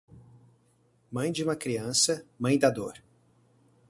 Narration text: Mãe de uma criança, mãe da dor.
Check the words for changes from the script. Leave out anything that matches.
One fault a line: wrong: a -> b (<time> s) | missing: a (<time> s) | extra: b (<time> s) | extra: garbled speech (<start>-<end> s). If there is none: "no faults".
no faults